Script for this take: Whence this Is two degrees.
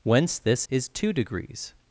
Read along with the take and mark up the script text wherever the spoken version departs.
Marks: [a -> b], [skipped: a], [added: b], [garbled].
Whence this Is two degrees.